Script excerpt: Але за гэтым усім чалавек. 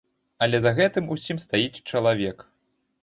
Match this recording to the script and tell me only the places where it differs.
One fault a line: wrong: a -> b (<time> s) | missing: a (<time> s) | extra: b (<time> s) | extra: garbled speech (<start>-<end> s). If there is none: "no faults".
extra: стаіць (1.5 s)